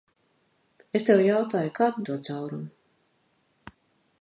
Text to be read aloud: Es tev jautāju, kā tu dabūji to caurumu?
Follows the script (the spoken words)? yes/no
no